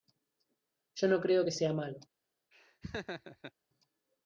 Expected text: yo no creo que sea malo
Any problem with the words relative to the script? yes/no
no